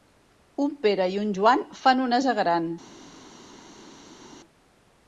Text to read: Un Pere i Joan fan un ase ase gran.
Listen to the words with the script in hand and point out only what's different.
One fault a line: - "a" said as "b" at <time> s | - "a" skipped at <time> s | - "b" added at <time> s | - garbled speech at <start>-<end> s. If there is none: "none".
- "un" added at 1.2 s
- "ase" skipped at 2.4 s